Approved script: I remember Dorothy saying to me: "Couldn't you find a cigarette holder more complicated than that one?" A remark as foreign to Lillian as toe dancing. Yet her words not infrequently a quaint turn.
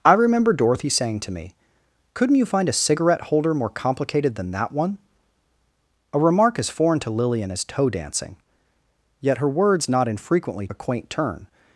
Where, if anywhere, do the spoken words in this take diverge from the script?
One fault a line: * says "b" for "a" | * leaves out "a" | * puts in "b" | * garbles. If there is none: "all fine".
all fine